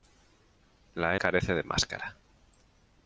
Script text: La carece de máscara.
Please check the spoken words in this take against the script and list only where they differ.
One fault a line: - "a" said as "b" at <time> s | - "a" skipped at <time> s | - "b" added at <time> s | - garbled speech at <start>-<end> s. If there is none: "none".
none